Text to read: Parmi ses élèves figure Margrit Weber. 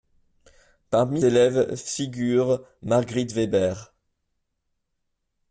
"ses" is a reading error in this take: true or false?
true